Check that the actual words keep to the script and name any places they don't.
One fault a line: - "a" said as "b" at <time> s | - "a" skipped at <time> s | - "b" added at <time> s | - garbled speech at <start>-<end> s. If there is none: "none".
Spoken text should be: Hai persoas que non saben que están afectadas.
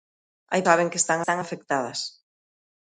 - "persoas" said as "saben" at 0.7 s
- "non saben que" said as "están" at 1.0 s